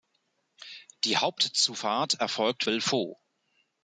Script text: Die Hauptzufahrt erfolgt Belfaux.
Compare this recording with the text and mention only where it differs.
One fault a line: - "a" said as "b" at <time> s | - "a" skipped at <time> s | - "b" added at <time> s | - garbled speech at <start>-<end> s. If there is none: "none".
none